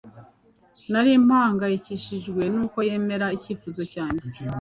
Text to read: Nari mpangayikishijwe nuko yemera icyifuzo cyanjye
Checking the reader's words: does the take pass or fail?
pass